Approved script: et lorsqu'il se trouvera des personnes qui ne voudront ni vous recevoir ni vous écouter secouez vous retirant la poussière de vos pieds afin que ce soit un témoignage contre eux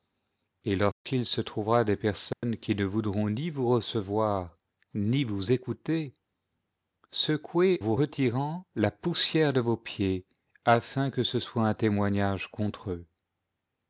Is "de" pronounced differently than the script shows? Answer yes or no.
no